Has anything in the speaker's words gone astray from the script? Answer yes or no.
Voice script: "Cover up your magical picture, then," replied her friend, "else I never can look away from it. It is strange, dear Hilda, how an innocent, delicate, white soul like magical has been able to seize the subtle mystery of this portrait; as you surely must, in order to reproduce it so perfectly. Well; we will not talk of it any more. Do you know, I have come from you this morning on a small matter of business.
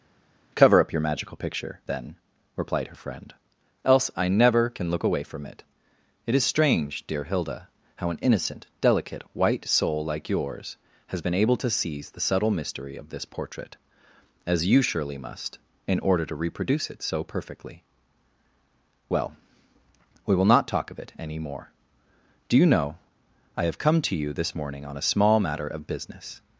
yes